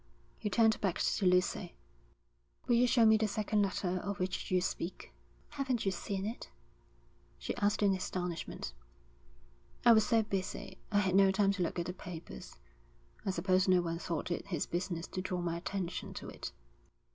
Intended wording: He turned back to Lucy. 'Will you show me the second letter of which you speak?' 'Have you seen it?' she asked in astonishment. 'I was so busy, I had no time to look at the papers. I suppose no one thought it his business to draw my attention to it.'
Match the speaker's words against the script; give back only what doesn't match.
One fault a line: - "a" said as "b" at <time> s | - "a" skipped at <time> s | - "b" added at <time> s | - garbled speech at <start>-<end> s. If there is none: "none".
- "Have" said as "Haven't" at 5.5 s